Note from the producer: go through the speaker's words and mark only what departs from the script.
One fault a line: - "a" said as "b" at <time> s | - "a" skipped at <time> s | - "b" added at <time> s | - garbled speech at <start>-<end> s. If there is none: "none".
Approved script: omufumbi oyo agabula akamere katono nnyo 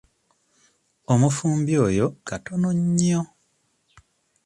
- "agabula akamere" skipped at 2.0 s